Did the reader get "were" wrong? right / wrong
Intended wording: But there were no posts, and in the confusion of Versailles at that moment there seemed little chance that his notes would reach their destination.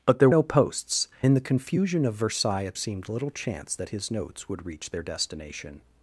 wrong